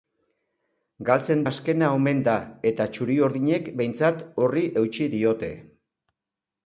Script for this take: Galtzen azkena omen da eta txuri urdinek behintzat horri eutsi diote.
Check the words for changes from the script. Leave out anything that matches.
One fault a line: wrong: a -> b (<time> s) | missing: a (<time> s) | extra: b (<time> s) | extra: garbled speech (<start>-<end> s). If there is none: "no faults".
no faults